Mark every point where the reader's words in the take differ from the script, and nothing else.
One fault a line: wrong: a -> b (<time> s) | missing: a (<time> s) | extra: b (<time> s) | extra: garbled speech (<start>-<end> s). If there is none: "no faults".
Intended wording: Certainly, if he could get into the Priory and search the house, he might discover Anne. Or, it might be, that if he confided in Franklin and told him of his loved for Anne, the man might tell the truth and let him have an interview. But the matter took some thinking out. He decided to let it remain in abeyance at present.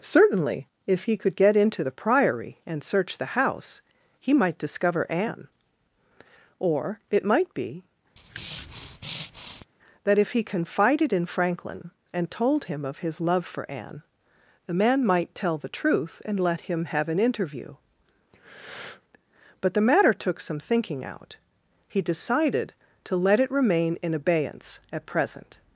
wrong: loved -> love (13.2 s)